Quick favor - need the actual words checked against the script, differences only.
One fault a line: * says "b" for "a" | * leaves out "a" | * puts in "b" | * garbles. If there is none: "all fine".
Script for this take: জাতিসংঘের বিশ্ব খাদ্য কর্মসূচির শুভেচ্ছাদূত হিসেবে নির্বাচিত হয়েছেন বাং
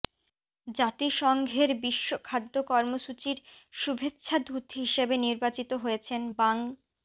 all fine